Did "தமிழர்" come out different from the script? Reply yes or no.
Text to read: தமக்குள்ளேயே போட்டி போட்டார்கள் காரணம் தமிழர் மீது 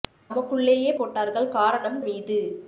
yes